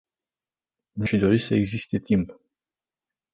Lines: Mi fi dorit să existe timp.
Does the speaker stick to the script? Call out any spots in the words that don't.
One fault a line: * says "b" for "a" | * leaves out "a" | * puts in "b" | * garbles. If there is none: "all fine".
all fine